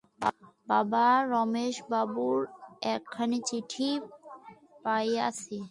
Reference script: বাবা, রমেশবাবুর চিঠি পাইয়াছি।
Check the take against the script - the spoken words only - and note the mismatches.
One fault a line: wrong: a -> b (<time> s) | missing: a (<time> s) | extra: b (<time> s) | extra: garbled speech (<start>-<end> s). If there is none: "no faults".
extra: একখানি (2.9 s)